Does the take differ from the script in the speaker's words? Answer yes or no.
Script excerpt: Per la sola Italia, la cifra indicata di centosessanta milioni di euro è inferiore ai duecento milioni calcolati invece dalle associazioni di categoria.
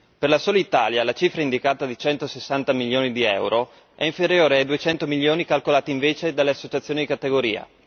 no